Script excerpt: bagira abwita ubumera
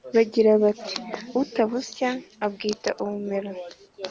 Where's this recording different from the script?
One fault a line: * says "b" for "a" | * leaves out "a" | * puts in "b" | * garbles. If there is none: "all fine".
* puts in "bati utabusya"